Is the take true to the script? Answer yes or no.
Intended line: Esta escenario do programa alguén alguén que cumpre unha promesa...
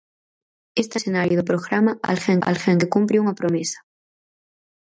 yes